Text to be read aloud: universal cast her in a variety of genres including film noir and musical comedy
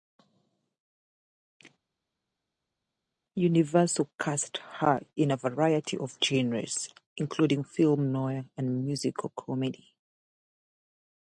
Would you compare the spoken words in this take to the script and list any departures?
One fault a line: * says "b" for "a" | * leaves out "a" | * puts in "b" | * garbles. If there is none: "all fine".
all fine